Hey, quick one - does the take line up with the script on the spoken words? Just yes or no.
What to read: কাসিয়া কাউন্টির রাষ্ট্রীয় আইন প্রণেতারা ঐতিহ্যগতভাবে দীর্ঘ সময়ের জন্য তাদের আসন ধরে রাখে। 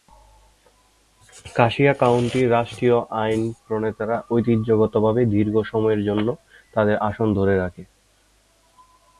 yes